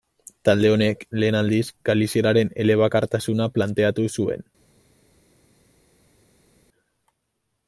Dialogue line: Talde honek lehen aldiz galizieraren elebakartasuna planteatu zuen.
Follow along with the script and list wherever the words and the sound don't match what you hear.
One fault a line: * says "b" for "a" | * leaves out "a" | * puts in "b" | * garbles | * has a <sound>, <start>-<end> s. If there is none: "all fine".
all fine